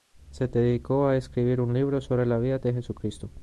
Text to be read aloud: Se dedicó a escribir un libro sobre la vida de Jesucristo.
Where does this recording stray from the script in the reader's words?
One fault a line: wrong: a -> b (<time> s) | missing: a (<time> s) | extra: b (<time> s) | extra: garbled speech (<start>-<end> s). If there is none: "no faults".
no faults